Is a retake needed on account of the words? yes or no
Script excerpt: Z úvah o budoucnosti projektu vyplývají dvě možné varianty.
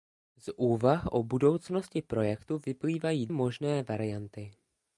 yes